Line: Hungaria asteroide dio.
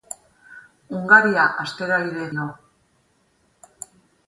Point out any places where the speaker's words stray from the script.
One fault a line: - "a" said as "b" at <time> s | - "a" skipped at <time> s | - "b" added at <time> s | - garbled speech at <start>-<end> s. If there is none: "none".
none